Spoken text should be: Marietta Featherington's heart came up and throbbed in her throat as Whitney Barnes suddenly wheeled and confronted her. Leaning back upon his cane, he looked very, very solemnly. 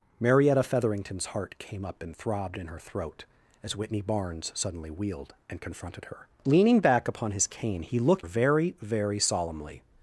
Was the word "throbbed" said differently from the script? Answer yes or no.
no